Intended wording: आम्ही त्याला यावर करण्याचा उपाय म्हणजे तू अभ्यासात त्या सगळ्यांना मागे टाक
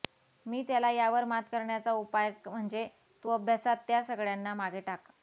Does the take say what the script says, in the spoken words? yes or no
no